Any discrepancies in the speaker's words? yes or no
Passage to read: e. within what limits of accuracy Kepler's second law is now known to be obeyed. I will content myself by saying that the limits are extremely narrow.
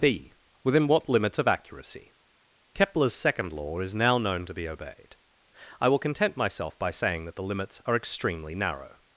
yes